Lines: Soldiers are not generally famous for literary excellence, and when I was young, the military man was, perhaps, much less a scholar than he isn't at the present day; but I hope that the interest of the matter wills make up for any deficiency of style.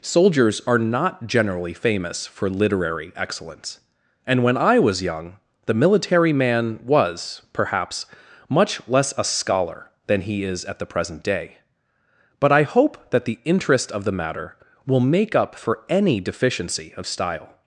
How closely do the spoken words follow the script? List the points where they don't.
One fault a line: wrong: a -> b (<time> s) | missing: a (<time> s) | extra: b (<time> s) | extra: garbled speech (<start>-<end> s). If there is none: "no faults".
wrong: isn't -> is (10.4 s)
wrong: wills -> will (14.9 s)